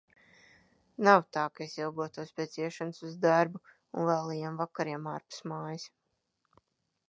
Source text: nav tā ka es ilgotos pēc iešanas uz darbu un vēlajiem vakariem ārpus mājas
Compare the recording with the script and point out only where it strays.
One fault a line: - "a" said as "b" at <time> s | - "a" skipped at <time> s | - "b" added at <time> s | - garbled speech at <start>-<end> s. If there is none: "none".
none